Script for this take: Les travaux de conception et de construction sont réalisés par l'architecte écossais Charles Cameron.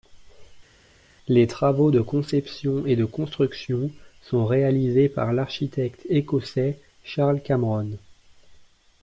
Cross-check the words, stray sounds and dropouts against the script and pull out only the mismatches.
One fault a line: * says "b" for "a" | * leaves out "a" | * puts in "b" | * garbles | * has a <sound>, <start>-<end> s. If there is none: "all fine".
all fine